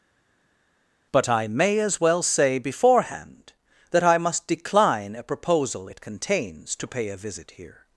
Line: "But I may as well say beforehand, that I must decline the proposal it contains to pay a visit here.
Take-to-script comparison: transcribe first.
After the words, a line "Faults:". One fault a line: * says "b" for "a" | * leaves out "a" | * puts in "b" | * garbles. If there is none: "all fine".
"But I may as well say beforehand, that I must decline a proposal it contains to pay a visit here.
Faults:
* says "a" for "the"